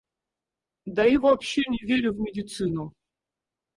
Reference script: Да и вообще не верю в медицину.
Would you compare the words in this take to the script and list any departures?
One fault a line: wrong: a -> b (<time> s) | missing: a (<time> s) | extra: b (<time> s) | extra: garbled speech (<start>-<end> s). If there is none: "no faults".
no faults